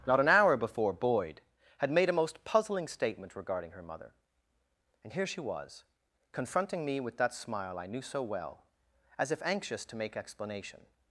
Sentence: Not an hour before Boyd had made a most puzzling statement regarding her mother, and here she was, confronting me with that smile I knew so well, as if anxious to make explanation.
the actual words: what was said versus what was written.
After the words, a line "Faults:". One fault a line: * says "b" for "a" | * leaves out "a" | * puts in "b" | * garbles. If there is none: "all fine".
Not an hour before Boyd had made a most puzzling statement regarding her mother, and here she was, confronting me with that smile I knew so well, as if anxious to make explanation.
Faults:
all fine